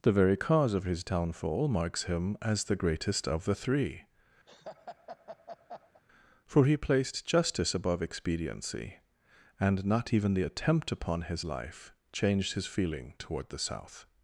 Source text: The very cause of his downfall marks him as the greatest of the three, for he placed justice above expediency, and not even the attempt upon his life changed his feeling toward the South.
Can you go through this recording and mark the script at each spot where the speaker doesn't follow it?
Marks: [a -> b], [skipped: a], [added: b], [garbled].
The very cause of his downfall marks him as the greatest of the three, for he placed justice above expediency, and not even the attempt upon his life changed his feeling toward the South.